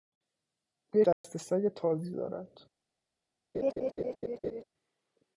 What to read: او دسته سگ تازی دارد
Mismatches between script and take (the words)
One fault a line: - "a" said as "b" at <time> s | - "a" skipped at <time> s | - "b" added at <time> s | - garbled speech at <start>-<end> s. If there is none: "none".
none